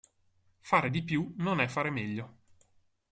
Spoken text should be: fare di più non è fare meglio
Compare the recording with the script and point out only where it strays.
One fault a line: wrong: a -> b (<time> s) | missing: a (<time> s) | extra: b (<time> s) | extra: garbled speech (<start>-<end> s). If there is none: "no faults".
no faults